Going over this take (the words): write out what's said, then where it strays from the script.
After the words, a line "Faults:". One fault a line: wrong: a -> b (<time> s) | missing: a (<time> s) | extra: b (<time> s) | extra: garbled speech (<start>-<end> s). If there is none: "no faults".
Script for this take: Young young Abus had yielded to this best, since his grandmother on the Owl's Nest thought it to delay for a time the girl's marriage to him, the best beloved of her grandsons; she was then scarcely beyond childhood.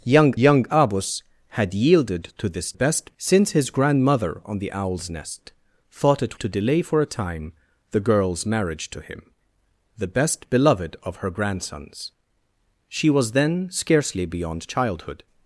Young young Abus had yielded to this best, since his grandmother on the Owl's Nest thought it to delay for a time the girl's marriage to him, the best beloved of her grandsons; she was then scarcely beyond childhood.
Faults:
no faults